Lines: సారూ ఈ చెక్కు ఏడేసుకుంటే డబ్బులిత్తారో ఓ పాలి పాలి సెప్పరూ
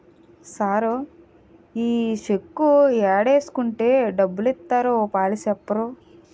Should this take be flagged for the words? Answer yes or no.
yes